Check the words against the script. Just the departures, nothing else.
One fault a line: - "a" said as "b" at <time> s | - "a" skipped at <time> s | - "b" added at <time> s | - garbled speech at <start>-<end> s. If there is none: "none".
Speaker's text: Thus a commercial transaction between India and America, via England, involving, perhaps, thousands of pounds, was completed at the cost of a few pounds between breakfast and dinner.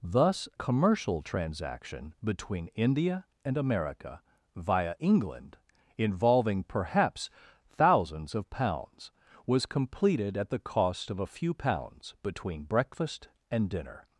- "a" skipped at 0.5 s